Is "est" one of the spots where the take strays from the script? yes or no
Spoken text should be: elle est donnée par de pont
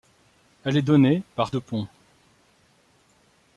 no